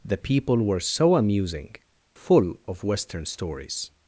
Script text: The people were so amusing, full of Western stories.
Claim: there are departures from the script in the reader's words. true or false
false